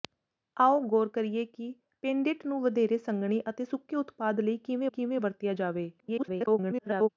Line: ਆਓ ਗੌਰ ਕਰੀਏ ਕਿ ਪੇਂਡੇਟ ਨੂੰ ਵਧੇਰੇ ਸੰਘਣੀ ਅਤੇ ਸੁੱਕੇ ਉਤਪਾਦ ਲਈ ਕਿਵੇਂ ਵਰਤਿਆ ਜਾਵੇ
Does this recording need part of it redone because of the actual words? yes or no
yes